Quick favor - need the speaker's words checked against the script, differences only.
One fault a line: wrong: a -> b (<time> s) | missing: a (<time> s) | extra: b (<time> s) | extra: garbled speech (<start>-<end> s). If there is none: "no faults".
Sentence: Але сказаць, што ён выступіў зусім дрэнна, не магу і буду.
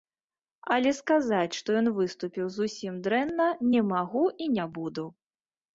extra: не (4.6 s)